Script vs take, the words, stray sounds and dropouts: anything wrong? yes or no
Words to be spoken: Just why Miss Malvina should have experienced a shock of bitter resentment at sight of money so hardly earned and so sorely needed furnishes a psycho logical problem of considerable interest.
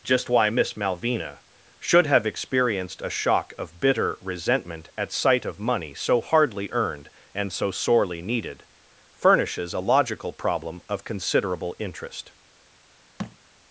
yes